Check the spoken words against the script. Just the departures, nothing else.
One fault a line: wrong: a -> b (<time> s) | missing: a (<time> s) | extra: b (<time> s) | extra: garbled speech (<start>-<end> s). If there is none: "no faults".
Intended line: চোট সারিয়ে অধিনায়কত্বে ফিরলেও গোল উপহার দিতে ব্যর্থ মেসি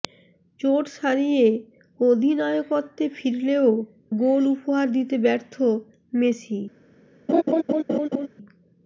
no faults